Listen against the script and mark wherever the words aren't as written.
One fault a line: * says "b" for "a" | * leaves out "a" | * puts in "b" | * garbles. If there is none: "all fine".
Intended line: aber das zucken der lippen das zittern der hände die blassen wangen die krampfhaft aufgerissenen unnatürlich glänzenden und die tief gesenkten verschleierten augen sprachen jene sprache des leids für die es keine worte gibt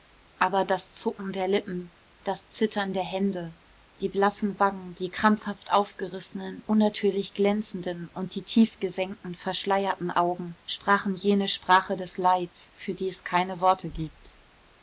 all fine